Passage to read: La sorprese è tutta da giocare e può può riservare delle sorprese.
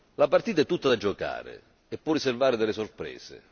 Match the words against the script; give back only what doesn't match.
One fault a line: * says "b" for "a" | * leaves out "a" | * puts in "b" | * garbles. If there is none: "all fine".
* says "partita" for "sorprese"
* leaves out "può"